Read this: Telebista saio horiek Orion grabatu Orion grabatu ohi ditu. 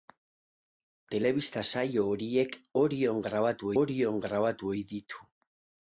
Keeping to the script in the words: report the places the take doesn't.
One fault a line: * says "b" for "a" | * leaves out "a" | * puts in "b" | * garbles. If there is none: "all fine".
all fine